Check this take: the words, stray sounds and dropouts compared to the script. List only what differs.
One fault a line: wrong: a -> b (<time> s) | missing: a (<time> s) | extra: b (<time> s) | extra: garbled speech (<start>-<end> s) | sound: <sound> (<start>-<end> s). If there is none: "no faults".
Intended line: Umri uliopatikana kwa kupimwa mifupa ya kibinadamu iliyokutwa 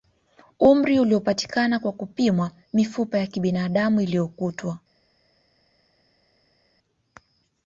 no faults